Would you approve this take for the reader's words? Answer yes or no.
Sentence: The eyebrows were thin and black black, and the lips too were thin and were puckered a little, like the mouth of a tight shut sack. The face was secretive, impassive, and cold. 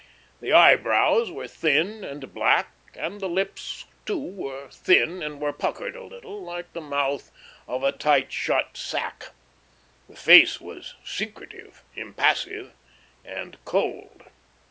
no